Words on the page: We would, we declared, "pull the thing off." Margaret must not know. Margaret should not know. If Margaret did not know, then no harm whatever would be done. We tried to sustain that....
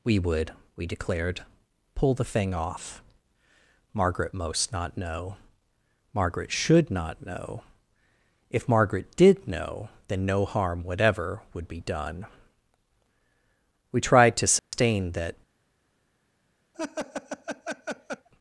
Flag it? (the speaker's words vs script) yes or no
yes